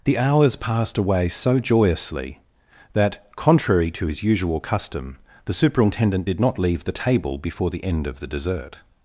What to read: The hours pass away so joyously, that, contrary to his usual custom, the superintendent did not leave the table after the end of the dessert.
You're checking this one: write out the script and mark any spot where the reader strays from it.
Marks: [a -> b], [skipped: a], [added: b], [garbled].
The hours [pass -> passed] away so joyously, that, contrary to his usual custom, the superintendent did not leave the table [after -> before] the end of the dessert.